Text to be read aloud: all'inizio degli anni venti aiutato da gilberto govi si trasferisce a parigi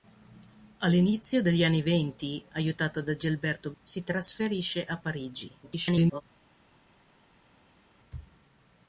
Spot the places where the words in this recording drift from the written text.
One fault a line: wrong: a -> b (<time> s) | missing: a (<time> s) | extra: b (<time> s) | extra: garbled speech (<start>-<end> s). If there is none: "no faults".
missing: govi (3.7 s)
extra: garbled speech (5.6-6.2 s)